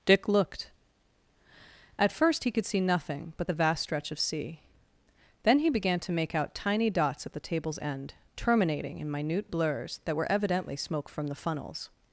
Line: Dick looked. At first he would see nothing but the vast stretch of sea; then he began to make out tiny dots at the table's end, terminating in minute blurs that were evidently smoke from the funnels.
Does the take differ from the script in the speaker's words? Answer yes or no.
yes